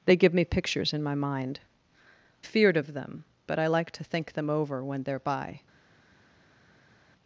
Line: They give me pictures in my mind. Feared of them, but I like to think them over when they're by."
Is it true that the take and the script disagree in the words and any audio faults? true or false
false